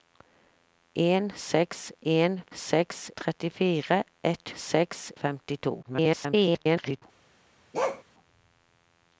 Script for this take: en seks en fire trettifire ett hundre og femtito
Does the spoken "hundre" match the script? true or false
false